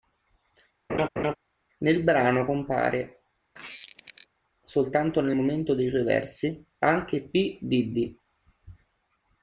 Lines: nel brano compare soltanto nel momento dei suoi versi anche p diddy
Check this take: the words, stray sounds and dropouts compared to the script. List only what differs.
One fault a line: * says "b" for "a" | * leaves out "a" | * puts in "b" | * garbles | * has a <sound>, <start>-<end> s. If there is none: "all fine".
* has a laugh, 0.9-1.4 s
* has a squeak, 3.5-4.3 s